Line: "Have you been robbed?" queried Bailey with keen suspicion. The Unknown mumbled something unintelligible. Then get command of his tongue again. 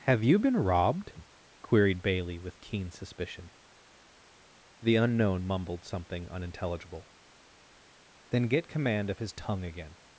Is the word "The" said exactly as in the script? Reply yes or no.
yes